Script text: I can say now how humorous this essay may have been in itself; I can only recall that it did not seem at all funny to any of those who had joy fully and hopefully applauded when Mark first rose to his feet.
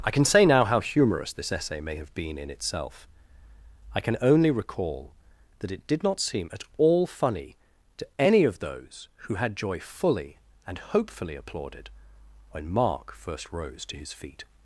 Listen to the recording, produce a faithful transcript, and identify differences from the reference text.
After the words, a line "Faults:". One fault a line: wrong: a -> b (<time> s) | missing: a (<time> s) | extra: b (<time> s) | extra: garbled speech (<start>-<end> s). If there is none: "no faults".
I can say now how humorous this essay may have been in itself; I can only recall that it did not seem at all funny to any of those who had joy fully and hopefully applauded when Mark first rose to his feet.
Faults:
no faults